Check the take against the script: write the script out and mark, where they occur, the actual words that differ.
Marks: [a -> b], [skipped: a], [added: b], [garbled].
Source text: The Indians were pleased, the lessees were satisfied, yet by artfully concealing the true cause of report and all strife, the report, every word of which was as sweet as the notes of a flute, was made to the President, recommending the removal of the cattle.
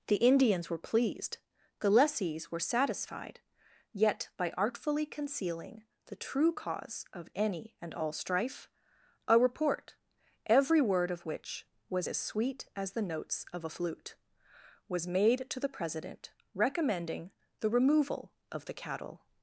The Indians were pleased, the lessees were satisfied, yet by artfully concealing the true cause of [report -> any] and all strife, [the -> a] report, every word of which was as sweet as the notes of a flute, was made to the President, recommending the removal of the cattle.